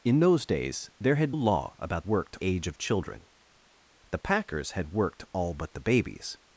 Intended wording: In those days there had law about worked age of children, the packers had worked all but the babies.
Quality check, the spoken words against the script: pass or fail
pass